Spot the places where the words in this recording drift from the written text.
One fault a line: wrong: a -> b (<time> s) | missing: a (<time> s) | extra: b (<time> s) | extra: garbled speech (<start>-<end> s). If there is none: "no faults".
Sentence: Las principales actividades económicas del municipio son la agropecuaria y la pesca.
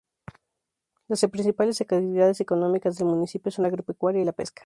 no faults